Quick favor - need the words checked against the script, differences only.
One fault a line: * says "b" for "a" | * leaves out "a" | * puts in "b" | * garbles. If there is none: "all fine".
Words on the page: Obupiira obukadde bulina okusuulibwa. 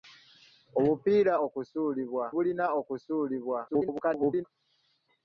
* says "okusuulibwa" for "obukadde"
* garbles